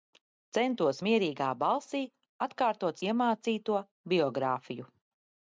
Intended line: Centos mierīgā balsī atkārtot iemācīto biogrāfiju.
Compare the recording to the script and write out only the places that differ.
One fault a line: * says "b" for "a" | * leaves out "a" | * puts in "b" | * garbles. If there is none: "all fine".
all fine